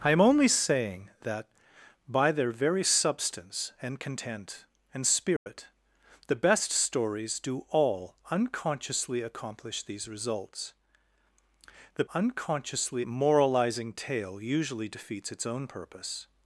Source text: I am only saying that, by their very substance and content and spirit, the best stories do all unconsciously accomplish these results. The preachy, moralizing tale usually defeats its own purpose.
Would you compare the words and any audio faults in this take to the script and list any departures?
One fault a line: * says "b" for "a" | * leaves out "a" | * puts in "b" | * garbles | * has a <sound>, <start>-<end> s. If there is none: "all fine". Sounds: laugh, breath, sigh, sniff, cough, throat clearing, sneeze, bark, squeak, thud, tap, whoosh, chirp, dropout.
* has a dropout, 5.4-5.5 s
* says "unconsciously" for "preachy"